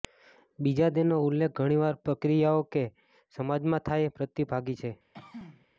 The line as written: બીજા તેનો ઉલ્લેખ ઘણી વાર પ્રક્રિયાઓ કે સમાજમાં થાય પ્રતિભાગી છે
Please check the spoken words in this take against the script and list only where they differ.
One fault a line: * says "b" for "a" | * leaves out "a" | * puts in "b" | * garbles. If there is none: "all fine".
all fine